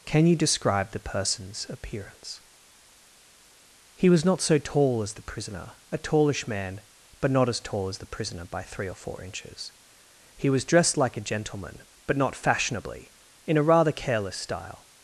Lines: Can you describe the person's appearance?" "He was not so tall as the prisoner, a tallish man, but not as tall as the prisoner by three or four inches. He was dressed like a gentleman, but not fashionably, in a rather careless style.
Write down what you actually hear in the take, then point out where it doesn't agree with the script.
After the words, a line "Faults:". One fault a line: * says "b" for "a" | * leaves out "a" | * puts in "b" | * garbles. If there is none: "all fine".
Can you describe the person's appearance?" "He was not so tall as the prisoner, a tallish man, but not as tall as the prisoner by three or four inches. He was dressed like a gentleman, but not fashionably, in a rather careless style.
Faults:
all fine